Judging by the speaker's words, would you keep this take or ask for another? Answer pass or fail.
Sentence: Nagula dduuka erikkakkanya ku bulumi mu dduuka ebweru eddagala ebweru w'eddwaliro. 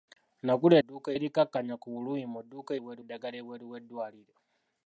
pass